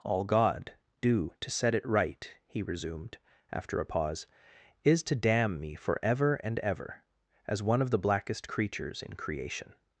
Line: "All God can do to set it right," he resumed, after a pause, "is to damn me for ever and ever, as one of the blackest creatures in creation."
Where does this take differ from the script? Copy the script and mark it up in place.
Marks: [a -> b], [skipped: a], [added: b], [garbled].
"All God [skipped: can] do to set it right," he resumed, after a pause, "is to damn me for ever and ever, as one of the blackest creatures in creation."